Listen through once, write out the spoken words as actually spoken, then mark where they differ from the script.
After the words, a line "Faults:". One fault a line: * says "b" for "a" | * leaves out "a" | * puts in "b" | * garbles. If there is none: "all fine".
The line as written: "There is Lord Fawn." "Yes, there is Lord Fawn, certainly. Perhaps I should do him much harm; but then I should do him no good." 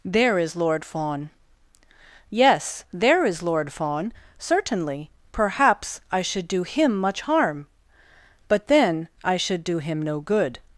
"There is Lord Fawn." "Yes, there is Lord Fawn, certainly. Perhaps I should do him much harm; but then I should do him no good."
Faults:
all fine